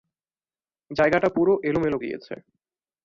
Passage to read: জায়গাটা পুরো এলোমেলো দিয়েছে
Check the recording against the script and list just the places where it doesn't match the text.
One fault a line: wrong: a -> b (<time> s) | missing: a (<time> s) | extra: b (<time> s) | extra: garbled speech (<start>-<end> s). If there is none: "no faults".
no faults